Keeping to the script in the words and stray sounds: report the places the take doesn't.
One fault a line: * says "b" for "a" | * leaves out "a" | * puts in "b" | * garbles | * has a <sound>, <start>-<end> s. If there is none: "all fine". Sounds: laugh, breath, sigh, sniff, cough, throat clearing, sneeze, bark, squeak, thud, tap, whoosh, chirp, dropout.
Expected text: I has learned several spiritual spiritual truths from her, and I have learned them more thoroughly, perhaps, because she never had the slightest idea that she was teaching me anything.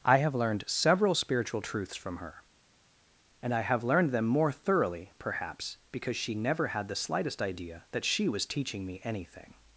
* says "have" for "has"
* leaves out "spiritual"